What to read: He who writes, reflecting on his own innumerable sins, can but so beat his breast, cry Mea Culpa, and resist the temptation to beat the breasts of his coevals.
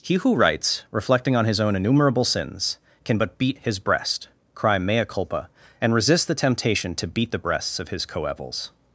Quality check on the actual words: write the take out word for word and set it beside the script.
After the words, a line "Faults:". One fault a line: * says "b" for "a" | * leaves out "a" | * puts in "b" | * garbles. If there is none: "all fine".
He who writes, reflecting on his own innumerable sins, can but beat his breast, cry Mea Culpa, and resist the temptation to beat the breasts of his coevals.
Faults:
* leaves out "so"